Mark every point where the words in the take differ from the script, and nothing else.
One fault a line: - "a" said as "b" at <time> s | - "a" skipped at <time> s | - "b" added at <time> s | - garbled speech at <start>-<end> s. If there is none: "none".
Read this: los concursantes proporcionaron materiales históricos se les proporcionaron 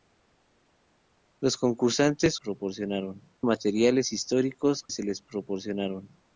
none